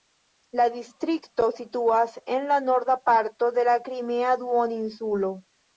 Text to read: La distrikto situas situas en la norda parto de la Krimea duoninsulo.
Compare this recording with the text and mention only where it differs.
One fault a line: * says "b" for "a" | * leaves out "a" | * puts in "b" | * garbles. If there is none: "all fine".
* leaves out "situas"